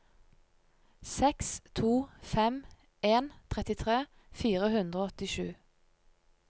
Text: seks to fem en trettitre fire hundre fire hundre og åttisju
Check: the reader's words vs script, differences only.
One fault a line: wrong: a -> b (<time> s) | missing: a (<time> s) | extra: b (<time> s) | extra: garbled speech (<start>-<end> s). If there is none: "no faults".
missing: fire hundre (5.0 s)